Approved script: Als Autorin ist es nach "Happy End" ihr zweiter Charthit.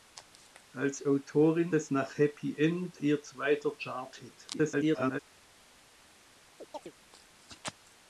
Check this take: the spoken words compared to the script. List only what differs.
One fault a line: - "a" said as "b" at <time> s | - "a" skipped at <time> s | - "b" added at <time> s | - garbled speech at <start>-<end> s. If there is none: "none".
- "ist" skipped at 1.8 s
- garbled speech at 4.5-5.2 s